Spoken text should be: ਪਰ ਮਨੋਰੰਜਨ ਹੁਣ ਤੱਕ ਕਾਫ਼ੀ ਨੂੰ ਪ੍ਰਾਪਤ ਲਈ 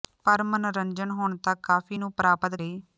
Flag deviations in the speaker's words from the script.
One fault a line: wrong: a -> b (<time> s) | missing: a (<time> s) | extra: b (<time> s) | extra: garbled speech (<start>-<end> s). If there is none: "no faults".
no faults